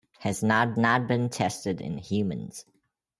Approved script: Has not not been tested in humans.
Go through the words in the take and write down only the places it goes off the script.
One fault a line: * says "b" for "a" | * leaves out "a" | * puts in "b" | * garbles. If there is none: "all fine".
all fine